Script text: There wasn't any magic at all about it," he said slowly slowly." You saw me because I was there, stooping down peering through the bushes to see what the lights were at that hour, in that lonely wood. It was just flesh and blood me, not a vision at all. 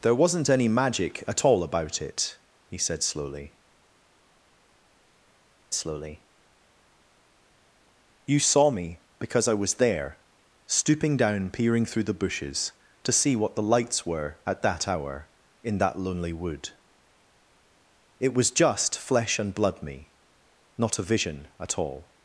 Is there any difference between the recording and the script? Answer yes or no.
no